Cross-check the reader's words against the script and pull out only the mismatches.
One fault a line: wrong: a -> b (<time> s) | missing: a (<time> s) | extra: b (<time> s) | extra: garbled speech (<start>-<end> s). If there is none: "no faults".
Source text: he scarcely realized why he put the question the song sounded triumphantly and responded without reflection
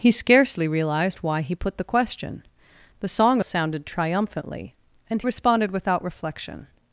no faults